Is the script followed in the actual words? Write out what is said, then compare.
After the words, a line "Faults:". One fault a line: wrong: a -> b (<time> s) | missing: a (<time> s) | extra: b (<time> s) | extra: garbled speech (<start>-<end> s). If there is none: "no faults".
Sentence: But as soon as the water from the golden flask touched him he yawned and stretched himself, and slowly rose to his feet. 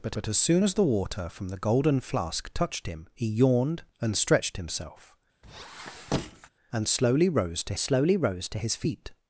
But but as soon as the water from the golden flask touched him he yawned and stretched himself, and slowly rose to slowly rose to his feet.
Faults:
extra: but (0.1 s)
extra: slowly rose to (7.8 s)